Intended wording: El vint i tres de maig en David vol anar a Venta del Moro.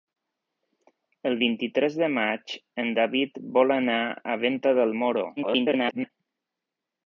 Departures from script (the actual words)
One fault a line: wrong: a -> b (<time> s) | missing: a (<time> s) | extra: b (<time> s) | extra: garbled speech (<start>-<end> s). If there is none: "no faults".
extra: garbled speech (5.4-6.1 s)